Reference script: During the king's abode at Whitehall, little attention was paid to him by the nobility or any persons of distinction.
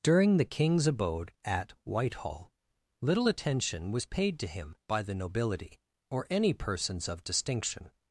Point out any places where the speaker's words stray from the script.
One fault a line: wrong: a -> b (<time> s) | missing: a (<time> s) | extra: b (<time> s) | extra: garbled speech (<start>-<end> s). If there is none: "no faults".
no faults